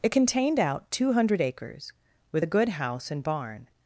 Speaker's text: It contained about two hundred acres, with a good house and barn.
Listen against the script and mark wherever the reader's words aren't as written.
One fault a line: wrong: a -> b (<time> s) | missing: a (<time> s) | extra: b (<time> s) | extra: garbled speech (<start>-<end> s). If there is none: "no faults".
wrong: about -> out (0.6 s)